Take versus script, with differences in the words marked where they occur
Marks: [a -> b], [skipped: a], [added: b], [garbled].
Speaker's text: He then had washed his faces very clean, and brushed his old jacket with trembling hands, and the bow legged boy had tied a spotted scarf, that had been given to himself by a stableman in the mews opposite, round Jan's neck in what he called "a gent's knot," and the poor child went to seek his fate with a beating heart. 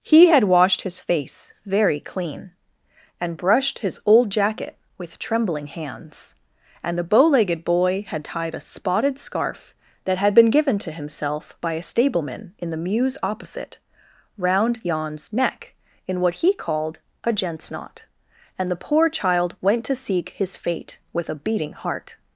He [skipped: then] had washed his [faces -> face] very clean, and brushed his old jacket with trembling hands, and the bow legged boy had tied a spotted scarf, that had been given to himself by a stableman in the mews opposite, round Jan's neck in what he called "a gent's knot," and the poor child went to seek his fate with a beating heart.